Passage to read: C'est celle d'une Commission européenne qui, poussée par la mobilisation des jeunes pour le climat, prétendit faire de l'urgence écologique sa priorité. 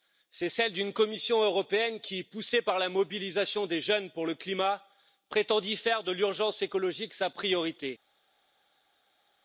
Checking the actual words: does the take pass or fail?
pass